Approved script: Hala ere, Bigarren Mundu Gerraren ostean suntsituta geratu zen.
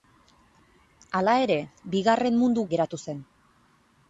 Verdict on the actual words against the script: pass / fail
fail